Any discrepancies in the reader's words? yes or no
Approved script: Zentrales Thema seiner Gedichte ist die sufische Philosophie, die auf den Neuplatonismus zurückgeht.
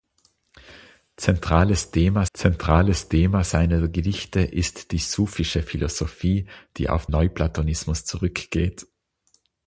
yes